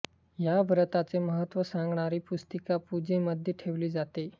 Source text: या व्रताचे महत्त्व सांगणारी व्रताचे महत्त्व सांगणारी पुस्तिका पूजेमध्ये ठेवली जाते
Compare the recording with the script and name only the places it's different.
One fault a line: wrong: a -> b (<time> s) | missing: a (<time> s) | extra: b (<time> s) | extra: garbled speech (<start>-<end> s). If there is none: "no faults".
missing: व्रताचे महत्त्व सांगणारी (2.2 s)